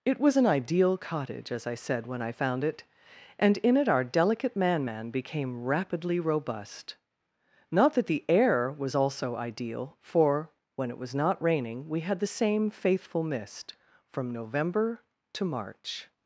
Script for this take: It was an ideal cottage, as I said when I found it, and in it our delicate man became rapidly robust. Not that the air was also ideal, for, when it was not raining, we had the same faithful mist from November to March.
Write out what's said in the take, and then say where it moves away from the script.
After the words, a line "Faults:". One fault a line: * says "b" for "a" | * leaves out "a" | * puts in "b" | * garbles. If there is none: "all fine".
It was an ideal cottage, as I said when I found it, and in it our delicate man man became rapidly robust. Not that the air was also ideal, for, when it was not raining, we had the same faithful mist from November to March.
Faults:
* puts in "man"